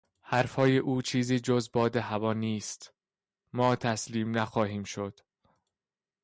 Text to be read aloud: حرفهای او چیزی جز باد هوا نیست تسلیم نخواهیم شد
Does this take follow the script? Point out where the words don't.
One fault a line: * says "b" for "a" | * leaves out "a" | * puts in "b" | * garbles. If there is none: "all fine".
* puts in "ما"